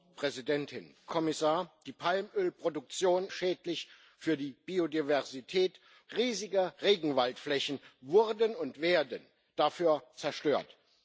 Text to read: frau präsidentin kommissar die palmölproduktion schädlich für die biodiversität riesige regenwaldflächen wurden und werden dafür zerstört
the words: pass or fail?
pass